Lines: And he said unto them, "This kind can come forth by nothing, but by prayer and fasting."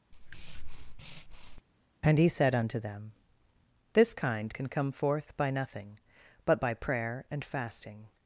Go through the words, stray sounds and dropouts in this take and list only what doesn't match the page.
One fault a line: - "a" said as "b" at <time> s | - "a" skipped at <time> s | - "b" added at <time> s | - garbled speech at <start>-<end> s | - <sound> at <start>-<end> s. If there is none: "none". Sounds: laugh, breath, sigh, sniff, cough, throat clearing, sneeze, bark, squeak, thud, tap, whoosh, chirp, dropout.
- breath at 0.1-1.6 s